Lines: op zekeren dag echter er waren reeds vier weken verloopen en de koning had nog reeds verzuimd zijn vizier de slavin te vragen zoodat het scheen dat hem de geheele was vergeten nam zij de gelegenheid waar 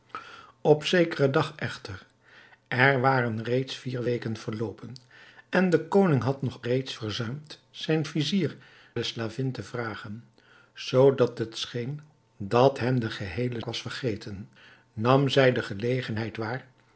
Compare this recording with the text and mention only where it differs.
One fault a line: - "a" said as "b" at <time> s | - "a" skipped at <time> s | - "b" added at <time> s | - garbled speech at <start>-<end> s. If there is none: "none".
none